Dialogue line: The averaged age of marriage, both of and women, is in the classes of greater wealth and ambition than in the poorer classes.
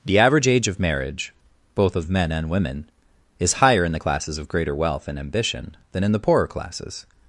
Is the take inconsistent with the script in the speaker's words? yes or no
yes